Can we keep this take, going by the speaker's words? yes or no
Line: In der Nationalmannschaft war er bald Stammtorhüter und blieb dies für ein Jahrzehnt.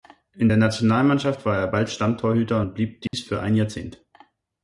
yes